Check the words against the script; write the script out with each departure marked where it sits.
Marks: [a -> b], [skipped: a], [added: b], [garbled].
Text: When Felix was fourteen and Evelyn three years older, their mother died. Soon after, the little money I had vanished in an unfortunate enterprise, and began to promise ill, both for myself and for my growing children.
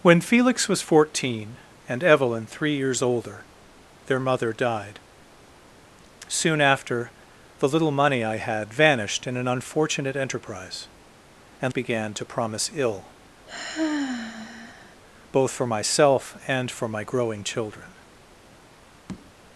When Felix was fourteen and Evelyn three years older, their mother died. Soon after, the little money I had vanished in an unfortunate enterprise, and began to promise ill, both for myself and for my growing children.